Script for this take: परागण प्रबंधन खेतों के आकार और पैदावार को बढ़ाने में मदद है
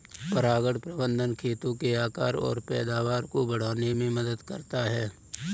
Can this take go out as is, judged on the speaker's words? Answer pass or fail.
fail